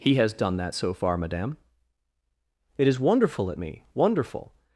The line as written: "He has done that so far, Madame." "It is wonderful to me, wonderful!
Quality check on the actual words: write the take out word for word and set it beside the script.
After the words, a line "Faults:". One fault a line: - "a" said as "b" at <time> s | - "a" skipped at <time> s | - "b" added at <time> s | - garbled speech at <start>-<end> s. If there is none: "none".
"He has done that so far, Madame." "It is wonderful at me, wonderful!
Faults:
- "to" said as "at" at 3.5 s